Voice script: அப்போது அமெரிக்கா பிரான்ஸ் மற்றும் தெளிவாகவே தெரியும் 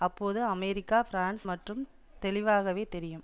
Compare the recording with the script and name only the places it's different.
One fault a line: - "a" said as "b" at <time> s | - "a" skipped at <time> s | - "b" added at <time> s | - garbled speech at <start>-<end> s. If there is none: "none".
none